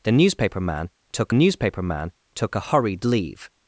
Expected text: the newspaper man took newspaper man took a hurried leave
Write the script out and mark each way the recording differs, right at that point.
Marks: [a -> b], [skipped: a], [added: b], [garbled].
the newspaper man took newspaper man took a hurried leave